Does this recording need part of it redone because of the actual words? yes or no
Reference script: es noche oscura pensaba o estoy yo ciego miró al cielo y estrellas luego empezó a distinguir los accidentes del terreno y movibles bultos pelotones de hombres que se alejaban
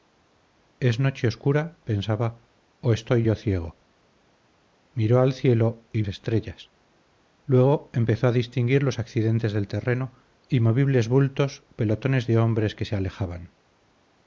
no